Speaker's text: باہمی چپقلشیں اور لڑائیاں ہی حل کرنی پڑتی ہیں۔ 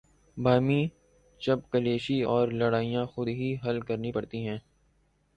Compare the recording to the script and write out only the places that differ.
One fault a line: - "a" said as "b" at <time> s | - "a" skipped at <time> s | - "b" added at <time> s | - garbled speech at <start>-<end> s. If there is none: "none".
- "خود" added at 3.0 s